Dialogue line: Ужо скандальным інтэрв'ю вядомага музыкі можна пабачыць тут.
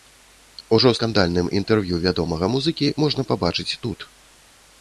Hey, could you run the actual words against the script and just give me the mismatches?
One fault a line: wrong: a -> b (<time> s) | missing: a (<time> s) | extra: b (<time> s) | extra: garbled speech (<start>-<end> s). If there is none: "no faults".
no faults